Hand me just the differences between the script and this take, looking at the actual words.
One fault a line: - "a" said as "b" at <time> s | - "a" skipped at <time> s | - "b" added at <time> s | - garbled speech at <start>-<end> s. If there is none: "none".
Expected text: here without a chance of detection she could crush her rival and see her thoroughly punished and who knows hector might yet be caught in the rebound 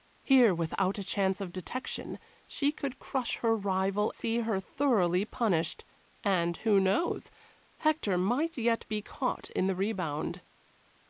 - "and" skipped at 4.1 s